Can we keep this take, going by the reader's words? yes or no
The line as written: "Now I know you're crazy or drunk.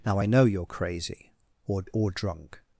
no